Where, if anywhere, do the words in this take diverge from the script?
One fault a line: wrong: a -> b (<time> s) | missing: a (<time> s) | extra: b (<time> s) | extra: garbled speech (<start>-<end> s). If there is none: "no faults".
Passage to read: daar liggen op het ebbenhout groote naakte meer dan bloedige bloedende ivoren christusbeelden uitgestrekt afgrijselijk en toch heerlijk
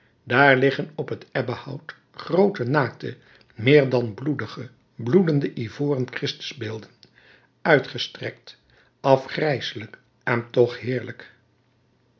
no faults